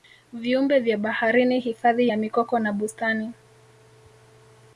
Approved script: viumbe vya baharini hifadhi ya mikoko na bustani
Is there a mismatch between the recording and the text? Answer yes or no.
no